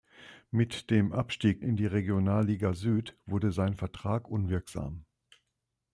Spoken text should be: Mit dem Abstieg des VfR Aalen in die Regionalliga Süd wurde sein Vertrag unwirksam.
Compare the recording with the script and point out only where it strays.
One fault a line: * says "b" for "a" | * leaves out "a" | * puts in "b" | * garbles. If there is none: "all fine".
* leaves out "des VfR Aalen"